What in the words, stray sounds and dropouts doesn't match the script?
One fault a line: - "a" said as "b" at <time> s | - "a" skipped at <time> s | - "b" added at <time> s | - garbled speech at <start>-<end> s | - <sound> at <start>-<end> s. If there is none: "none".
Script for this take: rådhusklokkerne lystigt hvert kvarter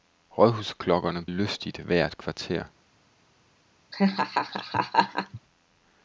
- laugh at 3.9-5.4 s